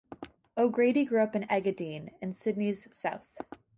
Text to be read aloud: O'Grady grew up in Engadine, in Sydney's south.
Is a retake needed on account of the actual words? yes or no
no